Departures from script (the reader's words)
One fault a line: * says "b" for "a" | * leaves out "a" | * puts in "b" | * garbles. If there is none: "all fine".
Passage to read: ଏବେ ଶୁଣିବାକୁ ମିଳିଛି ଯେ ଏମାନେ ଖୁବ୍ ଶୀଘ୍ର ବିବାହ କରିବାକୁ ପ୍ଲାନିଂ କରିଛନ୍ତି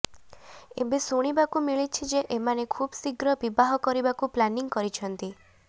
all fine